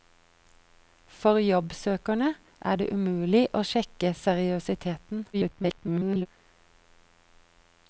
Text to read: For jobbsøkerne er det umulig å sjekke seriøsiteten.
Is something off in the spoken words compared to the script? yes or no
yes